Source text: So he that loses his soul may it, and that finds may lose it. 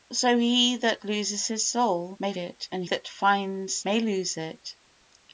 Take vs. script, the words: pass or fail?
pass